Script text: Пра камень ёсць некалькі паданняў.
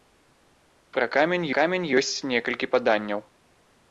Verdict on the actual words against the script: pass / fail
fail